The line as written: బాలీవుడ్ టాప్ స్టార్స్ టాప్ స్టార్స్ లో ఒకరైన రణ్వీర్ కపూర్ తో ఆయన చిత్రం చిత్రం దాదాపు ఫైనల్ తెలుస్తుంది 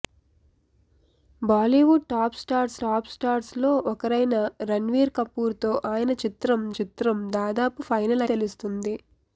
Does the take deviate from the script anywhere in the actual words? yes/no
no